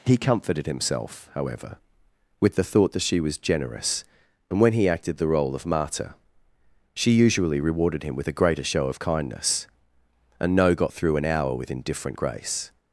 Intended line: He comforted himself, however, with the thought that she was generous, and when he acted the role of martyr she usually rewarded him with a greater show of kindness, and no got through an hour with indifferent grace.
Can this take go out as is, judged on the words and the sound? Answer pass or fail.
pass